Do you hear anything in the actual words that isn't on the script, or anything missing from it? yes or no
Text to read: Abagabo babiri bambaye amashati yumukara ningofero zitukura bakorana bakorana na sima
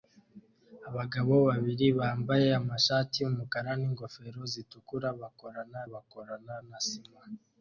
no